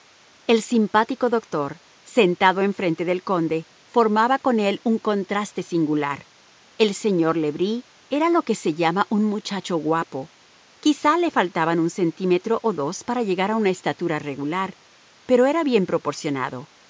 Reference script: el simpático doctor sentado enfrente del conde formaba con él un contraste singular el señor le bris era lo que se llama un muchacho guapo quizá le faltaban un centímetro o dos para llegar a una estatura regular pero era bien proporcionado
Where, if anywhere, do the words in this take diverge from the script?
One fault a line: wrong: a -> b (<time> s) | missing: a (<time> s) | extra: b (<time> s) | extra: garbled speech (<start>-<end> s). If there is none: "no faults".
no faults